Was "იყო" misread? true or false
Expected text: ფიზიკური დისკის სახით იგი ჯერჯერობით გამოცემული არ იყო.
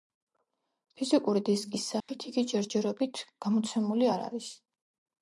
true